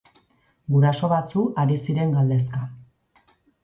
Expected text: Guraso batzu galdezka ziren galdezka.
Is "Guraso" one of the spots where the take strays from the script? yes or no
no